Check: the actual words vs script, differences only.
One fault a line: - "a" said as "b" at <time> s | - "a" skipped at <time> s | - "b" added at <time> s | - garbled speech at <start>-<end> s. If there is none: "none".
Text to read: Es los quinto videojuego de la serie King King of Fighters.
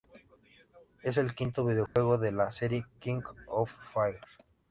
- "los" said as "el" at 1.2 s
- "King" skipped at 3.2 s